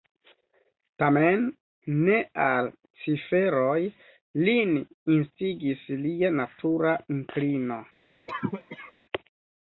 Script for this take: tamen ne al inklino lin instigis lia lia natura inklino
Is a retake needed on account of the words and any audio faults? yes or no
yes